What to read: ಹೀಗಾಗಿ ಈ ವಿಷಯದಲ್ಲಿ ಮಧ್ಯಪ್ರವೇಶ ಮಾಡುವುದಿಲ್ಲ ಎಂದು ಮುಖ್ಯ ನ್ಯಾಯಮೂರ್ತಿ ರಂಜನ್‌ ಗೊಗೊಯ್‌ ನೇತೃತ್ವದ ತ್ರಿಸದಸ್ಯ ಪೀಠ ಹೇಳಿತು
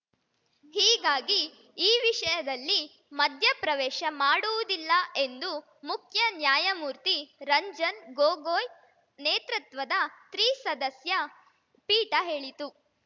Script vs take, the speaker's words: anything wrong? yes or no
no